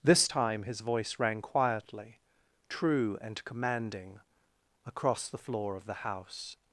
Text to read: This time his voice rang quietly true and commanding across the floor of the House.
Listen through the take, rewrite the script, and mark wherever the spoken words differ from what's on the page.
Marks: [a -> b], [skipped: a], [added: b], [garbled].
This time his voice rang quietly true and commanding across the floor of the House.